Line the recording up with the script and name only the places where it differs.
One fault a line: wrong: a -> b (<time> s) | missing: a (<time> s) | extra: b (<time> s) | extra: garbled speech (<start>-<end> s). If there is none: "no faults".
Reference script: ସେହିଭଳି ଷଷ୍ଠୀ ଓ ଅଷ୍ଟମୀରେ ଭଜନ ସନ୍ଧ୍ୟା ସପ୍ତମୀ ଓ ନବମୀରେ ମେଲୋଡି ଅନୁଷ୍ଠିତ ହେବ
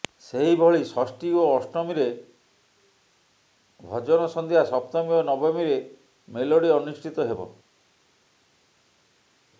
no faults